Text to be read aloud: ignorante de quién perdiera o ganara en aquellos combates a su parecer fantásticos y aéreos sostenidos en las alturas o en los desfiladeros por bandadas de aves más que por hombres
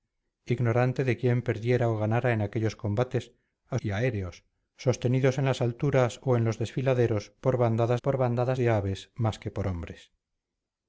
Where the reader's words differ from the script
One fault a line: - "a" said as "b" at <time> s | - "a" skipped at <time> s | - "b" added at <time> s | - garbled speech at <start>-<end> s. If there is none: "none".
- "su parecer fantásticos" skipped at 3.8 s
- "por bandadas" added at 8.0 s